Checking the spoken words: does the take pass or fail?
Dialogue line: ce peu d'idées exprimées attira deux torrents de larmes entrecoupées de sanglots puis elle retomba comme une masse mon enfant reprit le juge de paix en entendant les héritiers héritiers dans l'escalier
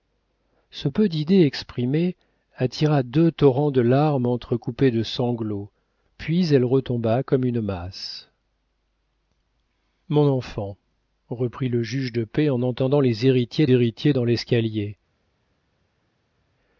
pass